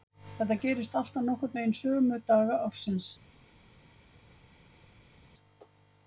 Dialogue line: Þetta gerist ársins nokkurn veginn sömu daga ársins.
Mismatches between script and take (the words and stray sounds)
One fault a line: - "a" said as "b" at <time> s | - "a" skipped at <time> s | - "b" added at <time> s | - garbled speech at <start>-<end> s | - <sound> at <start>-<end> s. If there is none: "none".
- "ársins" said as "alltaf" at 1.0 s